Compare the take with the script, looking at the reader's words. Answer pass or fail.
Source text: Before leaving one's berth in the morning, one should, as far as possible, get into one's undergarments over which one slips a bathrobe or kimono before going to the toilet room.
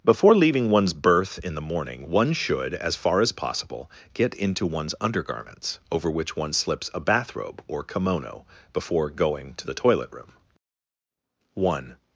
fail